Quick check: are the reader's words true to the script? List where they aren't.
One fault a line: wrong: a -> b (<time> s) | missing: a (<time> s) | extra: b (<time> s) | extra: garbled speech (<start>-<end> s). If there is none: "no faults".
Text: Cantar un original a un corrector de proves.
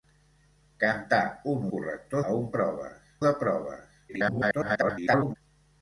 wrong: original -> corrector (1.7 s)
wrong: corrector -> proves (2.6 s)
extra: garbled speech (4.1-5.4 s)